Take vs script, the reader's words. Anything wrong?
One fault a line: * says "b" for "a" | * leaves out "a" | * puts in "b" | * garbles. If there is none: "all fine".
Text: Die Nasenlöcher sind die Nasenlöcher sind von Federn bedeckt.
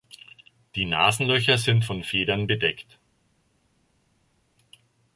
* leaves out "die Nasenlöcher sind"